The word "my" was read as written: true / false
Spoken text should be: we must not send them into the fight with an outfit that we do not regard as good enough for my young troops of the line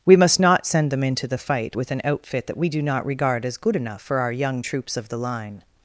false